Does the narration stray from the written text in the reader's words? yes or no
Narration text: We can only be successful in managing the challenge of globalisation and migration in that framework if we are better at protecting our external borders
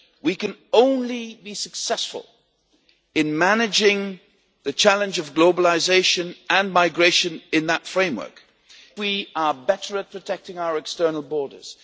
yes